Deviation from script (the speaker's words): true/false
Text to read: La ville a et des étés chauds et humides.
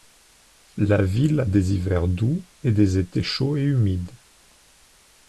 true